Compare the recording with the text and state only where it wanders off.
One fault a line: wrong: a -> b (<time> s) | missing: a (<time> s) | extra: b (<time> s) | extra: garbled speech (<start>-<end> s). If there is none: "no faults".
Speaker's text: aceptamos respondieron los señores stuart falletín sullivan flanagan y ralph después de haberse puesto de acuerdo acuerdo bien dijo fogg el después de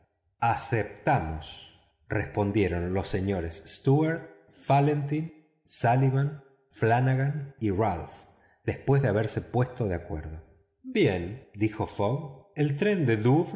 missing: acuerdo (10.4 s)
wrong: después -> tren (12.8 s)